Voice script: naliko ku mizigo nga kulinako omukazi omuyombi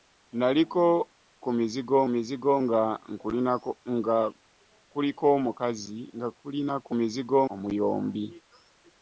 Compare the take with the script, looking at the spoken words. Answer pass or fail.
fail